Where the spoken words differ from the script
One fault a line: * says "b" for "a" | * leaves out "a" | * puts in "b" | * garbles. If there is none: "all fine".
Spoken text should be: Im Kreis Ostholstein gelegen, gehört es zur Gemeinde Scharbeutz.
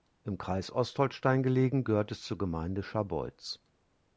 all fine